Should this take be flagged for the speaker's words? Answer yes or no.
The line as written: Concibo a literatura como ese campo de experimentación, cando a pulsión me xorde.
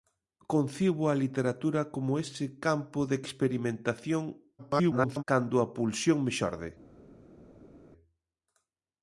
yes